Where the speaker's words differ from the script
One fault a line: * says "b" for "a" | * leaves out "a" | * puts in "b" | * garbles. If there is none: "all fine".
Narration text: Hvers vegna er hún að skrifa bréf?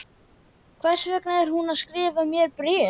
* puts in "mér"